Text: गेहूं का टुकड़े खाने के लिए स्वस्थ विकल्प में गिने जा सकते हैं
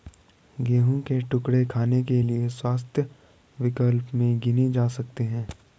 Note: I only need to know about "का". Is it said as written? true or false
false